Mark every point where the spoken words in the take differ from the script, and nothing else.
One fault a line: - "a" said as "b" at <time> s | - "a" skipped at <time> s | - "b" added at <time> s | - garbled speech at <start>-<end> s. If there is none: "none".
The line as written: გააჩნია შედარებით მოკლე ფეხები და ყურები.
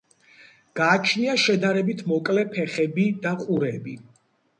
none